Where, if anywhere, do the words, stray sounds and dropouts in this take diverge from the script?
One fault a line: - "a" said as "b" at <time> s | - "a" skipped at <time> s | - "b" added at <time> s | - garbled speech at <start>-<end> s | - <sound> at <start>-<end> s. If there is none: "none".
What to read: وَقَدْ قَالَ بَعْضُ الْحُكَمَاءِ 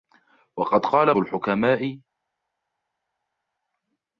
- "بَعْضُ" skipped at 1.1 s